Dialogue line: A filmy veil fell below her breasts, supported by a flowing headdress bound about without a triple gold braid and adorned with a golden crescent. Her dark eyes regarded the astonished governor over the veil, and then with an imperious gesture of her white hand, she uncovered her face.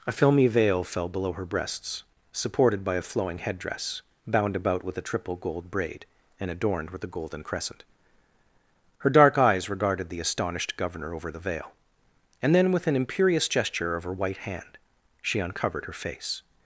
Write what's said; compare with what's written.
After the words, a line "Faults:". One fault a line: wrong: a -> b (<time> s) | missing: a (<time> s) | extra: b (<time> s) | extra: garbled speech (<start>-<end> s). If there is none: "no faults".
A filmy veil fell below her breasts, supported by a flowing headdress bound about with a triple gold braid and adorned with a golden crescent. Her dark eyes regarded the astonished governor over the veil, and then with an imperious gesture of her white hand, she uncovered her face.
Faults:
wrong: without -> with (4.8 s)